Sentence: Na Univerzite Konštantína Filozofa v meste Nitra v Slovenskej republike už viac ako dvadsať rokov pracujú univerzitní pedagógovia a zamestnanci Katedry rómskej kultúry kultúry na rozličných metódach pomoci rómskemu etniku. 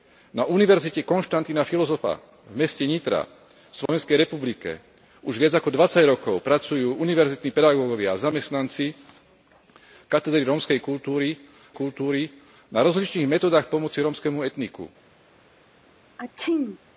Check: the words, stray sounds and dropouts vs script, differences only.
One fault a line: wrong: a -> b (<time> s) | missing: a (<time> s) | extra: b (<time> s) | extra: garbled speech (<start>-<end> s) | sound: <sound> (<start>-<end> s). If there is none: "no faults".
sound: dropout (3.9-3.9 s)
sound: sneeze (16.2-16.8 s)